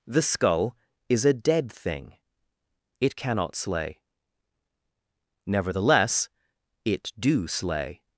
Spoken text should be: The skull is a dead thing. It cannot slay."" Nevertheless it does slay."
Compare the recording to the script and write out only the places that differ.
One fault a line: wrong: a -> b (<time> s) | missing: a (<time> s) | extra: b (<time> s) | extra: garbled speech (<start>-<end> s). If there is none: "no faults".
wrong: does -> do (7.2 s)